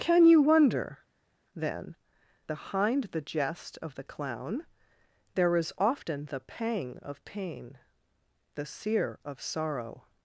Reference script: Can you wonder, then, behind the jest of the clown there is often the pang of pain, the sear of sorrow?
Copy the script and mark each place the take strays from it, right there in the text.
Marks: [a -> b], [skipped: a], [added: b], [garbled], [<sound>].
Can you wonder, then, behind the jest of the clown there is often the pang of pain, the sear of sorrow?